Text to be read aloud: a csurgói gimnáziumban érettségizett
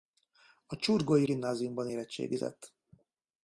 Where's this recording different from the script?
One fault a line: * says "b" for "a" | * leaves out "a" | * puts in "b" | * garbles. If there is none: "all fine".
all fine